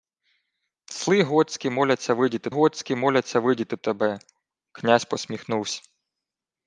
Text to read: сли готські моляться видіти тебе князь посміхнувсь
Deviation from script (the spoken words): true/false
true